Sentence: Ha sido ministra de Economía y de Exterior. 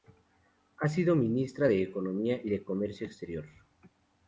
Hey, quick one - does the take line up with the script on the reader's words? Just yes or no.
no